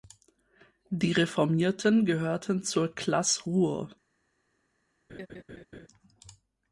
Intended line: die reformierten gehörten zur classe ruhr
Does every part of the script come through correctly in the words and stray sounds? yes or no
no